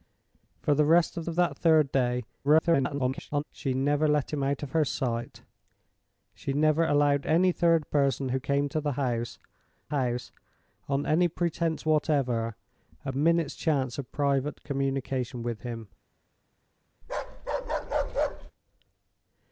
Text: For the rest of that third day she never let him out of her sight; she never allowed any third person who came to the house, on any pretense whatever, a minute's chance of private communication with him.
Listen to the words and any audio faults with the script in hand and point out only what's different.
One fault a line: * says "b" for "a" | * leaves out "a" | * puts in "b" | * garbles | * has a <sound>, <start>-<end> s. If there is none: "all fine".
* puts in "of"
* garbles
* puts in "house"
* has a bark, 17.0-18.5 s